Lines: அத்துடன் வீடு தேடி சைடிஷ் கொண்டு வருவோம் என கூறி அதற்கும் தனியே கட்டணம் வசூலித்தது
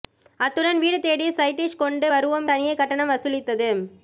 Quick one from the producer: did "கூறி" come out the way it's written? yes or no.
no